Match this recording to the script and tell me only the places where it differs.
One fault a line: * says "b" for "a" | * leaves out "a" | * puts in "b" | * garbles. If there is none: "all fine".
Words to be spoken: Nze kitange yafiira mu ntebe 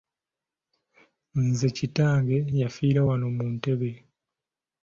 * puts in "wano"